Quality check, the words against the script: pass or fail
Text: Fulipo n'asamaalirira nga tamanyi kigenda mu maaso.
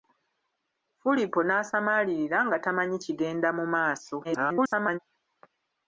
fail